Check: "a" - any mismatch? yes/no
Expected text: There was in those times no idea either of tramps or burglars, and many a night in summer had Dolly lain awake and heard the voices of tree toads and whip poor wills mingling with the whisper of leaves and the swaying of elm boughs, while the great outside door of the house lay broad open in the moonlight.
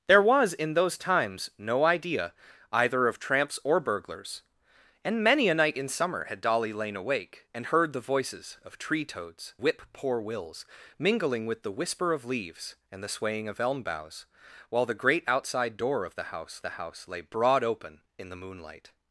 no